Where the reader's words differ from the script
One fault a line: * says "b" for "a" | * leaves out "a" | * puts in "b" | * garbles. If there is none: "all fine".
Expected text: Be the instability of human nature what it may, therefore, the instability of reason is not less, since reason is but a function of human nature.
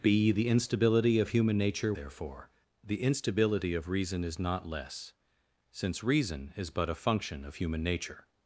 * leaves out "what it may"